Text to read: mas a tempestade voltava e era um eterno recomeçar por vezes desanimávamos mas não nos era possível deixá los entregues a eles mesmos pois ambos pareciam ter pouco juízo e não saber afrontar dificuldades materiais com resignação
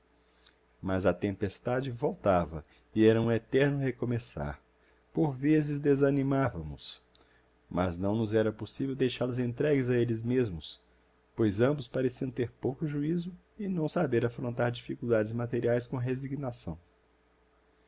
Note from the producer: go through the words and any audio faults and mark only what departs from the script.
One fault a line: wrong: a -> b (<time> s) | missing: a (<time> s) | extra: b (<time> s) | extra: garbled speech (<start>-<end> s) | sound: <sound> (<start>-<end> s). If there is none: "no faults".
no faults